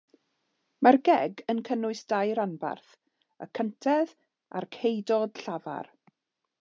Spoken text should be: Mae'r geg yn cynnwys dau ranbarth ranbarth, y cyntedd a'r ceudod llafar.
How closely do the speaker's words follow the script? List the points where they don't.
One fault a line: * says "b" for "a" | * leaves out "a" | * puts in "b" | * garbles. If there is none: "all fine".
* leaves out "ranbarth"